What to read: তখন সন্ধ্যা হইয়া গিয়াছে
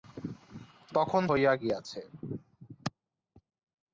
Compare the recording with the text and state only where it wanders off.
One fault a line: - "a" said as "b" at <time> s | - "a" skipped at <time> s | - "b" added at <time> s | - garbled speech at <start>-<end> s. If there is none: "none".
- "সন্ধ্যা" skipped at 1.2 s